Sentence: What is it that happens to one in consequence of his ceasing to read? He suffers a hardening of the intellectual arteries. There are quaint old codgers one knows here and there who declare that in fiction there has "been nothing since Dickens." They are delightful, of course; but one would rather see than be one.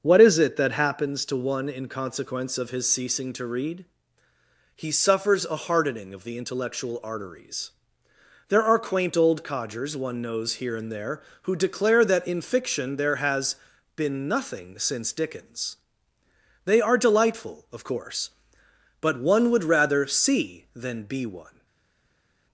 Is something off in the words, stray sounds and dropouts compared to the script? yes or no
no